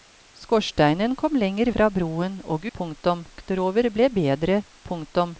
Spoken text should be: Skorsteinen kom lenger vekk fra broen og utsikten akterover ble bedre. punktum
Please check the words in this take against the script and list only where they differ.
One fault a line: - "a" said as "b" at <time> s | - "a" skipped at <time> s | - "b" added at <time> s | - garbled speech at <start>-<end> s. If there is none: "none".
- "vekk" skipped at 1.7 s
- "utsikten" said as "punktum" at 2.8 s